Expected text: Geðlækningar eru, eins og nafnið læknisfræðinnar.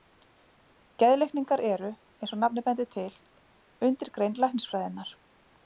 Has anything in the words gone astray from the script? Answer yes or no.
yes